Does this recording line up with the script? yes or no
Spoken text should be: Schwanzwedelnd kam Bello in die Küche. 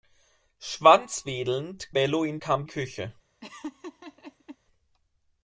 no